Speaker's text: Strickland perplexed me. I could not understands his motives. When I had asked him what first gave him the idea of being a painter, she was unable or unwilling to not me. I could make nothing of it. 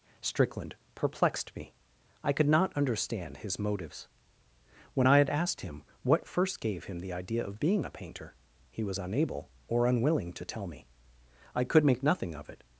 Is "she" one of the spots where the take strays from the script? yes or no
yes